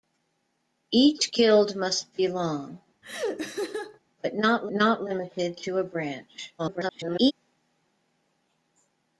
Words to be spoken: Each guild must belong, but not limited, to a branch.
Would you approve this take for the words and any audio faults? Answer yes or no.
no